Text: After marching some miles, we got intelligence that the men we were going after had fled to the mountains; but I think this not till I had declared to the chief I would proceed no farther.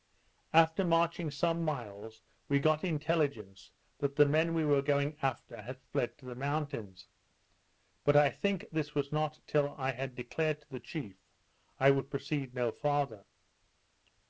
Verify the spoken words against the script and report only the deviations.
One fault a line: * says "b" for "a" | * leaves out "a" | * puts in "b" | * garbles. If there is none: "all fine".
* puts in "was"